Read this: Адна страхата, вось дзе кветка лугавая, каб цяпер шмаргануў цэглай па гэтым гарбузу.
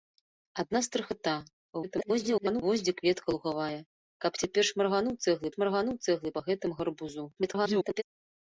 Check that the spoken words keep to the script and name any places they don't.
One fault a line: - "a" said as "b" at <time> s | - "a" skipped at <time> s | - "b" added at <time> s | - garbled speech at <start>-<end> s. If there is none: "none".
- garbled speech at 1.8-2.6 s
- "шмаргануў цэглай" added at 5.5 s
- garbled speech at 7.4-8.0 s